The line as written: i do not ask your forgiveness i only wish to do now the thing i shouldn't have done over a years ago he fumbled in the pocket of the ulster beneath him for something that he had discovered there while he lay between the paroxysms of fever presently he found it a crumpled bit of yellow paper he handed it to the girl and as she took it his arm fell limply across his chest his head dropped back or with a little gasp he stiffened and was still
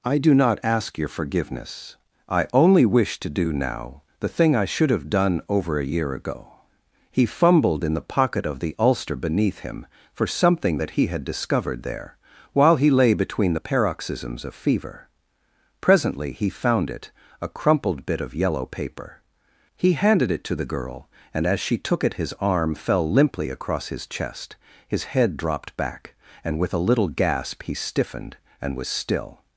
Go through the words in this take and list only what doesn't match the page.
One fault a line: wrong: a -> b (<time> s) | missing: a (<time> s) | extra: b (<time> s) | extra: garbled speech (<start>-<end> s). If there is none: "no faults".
wrong: shouldn't -> should (4.7 s)
wrong: years -> year (5.8 s)
wrong: or -> and (26.4 s)